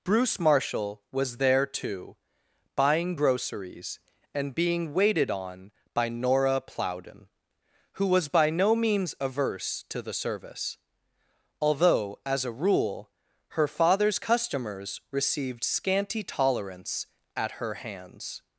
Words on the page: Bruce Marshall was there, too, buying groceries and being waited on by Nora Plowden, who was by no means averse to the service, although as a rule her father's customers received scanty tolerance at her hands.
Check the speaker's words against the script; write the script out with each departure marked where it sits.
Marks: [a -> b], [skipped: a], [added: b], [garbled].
Bruce Marshall was there, too, buying groceries and being waited on by Nora Plowden, who was by no means averse to the service, although as a rule her father's customers received scanty tolerance at her hands.